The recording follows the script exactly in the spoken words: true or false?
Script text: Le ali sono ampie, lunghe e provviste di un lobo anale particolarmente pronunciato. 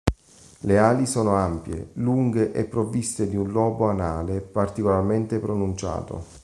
true